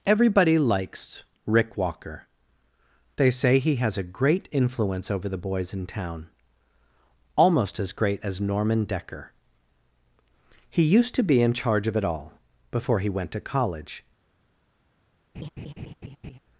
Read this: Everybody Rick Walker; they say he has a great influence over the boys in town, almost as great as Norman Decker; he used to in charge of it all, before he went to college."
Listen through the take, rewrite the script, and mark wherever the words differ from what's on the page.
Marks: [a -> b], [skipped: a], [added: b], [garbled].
Everybody [added: likes] Rick Walker; they say he has a great influence over the boys in town, almost as great as Norman Decker; he used to [added: be] in charge of it all, before he went to college."